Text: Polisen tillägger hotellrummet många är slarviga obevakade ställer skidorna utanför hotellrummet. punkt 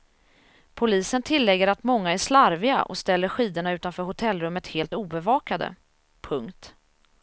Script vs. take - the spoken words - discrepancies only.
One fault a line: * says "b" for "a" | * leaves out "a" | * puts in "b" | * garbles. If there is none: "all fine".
* says "att" for "hotellrummet"
* says "och" for "obevakade"
* puts in "helt obevakade"